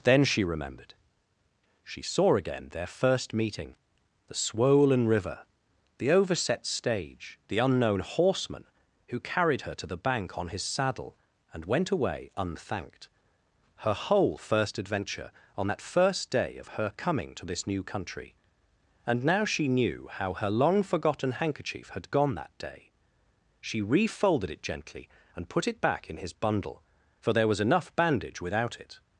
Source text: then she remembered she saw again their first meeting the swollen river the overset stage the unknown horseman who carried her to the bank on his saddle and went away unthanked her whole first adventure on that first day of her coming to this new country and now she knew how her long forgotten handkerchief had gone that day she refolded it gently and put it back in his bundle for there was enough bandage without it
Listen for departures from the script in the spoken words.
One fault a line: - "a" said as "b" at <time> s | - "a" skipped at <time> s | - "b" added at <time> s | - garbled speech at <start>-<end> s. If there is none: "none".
none